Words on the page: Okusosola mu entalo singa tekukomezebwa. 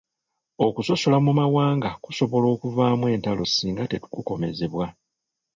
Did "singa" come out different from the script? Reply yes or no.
no